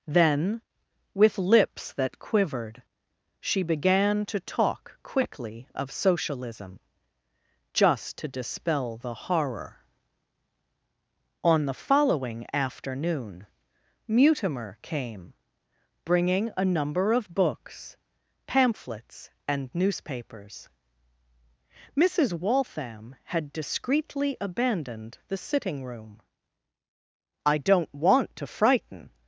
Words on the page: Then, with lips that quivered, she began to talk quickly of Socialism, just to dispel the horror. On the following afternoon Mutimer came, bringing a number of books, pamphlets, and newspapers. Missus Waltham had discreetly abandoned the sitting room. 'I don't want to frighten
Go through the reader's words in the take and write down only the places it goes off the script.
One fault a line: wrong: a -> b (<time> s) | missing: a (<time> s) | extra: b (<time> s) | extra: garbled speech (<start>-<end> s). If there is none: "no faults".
no faults